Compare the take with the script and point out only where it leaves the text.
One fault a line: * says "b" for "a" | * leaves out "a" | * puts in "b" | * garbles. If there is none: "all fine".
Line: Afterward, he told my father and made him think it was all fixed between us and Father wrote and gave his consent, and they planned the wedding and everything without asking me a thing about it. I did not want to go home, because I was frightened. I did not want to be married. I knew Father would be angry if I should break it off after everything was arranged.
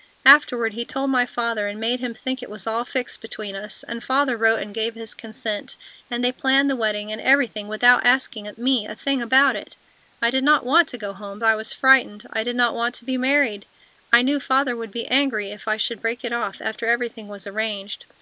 * leaves out "because"